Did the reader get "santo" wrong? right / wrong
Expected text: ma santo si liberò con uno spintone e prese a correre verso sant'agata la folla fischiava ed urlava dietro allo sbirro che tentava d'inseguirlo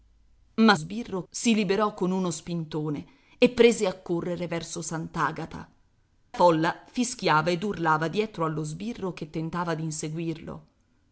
wrong